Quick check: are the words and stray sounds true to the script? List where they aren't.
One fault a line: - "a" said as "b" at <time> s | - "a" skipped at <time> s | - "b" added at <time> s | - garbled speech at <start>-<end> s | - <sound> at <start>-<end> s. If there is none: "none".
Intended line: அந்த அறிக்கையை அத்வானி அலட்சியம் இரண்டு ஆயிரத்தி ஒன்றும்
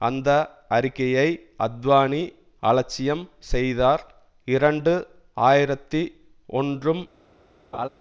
- "செய்தார்" added at 3.5 s
- laugh at 7.7-7.9 s